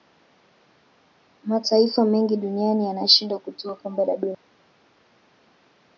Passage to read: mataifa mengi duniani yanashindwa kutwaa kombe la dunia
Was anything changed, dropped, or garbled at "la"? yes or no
no